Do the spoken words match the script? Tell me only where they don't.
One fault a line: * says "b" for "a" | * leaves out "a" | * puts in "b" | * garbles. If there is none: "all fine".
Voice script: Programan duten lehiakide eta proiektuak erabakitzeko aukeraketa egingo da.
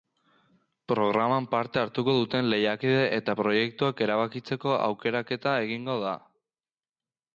* puts in "parte hartuko"